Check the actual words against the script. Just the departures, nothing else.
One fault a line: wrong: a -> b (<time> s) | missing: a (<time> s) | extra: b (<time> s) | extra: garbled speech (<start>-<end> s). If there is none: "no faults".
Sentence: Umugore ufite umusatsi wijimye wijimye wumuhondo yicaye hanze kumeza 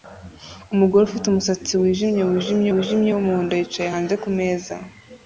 extra: wijimye (2.7 s)